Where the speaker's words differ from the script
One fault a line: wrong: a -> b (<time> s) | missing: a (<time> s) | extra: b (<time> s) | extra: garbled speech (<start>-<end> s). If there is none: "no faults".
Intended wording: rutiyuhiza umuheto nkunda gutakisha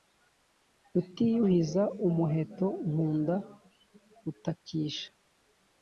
no faults